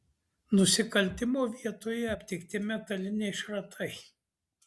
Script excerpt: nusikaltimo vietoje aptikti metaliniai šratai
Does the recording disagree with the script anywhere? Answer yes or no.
no